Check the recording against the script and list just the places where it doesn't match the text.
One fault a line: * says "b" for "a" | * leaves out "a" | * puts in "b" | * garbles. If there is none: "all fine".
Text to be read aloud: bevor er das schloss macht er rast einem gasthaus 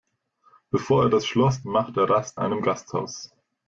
all fine